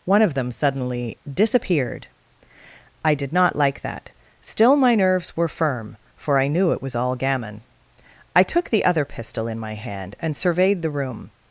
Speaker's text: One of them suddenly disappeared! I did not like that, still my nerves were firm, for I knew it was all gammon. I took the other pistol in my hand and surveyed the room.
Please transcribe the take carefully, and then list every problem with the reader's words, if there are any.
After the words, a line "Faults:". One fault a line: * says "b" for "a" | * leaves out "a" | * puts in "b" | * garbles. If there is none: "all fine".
One of them suddenly disappeared! I did not like that, still my nerves were firm, for I knew it was all gammon. I took the other pistol in my hand and surveyed the room.
Faults:
all fine